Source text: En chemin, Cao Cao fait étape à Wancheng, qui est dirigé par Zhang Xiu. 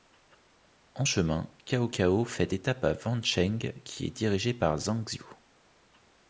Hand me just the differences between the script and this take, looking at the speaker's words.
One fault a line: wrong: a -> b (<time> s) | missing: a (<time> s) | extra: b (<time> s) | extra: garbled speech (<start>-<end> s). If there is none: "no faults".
no faults